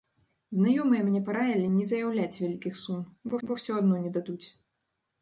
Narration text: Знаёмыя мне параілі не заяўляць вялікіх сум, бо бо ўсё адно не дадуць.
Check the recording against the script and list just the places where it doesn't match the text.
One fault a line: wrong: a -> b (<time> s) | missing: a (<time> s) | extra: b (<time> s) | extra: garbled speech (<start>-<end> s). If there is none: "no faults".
no faults